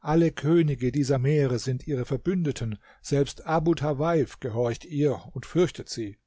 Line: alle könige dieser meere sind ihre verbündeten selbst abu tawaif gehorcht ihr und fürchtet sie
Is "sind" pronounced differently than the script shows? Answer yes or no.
no